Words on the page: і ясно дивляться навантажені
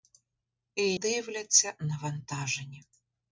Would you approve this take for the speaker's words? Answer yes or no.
no